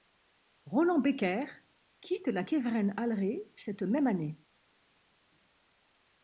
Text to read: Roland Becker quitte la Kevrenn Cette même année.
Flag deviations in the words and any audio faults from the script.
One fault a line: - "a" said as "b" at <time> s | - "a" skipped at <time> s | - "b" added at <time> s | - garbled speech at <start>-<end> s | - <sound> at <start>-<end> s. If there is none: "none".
- "Alré" added at 3.0 s